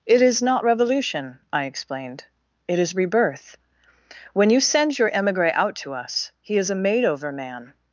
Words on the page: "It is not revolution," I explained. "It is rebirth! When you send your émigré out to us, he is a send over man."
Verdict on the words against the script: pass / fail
fail